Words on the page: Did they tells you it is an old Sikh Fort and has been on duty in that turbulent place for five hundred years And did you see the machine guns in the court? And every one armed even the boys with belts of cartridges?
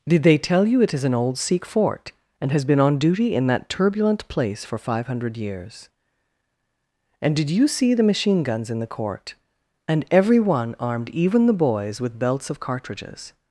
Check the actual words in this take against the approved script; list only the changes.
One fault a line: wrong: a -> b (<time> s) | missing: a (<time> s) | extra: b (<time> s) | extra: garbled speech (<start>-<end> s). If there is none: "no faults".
wrong: tells -> tell (0.4 s)